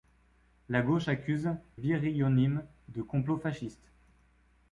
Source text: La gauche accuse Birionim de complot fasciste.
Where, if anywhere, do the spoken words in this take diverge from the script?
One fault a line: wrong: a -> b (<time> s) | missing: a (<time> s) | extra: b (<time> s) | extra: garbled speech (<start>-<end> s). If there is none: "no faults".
no faults